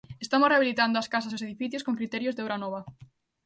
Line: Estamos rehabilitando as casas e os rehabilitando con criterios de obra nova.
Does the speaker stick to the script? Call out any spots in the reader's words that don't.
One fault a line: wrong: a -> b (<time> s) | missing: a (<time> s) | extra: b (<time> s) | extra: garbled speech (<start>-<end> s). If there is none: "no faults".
wrong: rehabilitando -> edificios (1.5 s)